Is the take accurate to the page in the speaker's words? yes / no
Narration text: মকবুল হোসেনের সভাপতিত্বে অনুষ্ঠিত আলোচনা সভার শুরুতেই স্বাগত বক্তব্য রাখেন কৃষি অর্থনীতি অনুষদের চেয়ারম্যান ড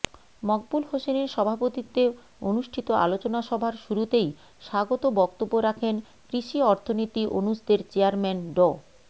yes